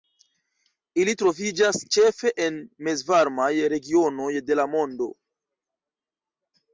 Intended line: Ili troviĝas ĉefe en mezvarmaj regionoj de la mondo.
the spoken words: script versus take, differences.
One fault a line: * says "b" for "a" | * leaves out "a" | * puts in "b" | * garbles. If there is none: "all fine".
all fine